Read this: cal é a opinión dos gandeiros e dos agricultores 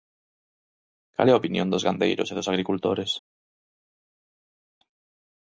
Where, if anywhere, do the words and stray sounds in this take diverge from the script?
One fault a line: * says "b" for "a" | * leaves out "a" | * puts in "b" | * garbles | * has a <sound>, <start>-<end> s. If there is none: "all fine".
all fine